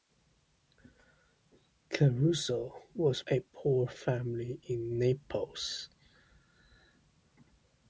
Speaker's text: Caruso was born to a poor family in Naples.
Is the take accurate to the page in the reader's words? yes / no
no